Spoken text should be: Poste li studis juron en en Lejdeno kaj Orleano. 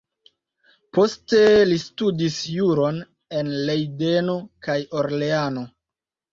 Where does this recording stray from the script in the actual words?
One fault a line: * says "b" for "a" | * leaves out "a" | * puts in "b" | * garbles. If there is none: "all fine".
* leaves out "en"